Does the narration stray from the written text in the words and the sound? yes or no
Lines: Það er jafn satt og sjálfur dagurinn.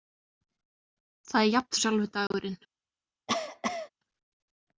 yes